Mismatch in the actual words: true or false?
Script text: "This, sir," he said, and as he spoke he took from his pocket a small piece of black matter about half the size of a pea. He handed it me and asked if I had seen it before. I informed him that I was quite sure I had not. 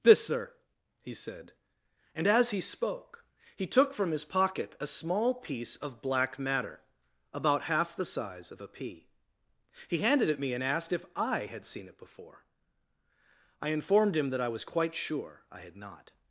false